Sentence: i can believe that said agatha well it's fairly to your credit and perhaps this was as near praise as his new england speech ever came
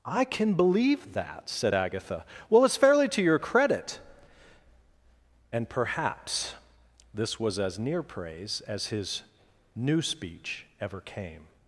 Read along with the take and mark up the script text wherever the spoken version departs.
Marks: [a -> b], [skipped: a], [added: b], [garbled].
i can believe that said agatha well it's fairly to your credit and perhaps this was as near praise as his new [skipped: england] speech ever came